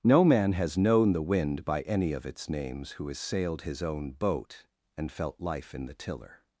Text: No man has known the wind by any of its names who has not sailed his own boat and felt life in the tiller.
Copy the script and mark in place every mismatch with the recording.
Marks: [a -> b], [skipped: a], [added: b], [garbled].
No man has known the wind by any of its names who has [skipped: not] sailed his own boat and felt life in the tiller.